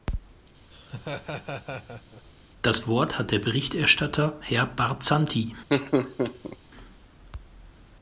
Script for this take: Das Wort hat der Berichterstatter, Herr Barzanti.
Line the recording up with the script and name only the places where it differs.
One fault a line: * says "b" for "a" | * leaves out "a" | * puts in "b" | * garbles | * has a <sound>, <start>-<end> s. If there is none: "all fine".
* has a laugh, 0.7-2.2 s
* has a laugh, 5.7-6.6 s